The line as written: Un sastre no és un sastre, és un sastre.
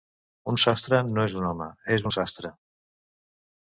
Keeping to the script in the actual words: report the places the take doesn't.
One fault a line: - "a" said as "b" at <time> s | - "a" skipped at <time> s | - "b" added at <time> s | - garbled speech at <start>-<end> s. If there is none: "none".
- "sastre" said as "home" at 1.5 s